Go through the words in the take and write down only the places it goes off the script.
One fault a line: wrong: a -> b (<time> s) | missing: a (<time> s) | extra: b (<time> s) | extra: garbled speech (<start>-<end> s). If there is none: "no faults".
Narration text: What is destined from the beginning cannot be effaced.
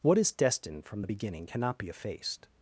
no faults